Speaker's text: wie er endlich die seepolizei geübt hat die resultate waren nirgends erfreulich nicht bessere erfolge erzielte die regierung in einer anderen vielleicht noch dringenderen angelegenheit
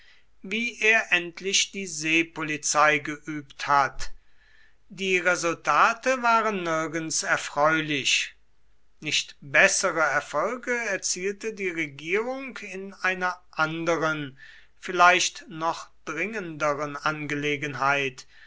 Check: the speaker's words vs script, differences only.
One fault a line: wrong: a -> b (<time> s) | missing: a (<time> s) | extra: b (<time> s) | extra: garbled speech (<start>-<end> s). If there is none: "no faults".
no faults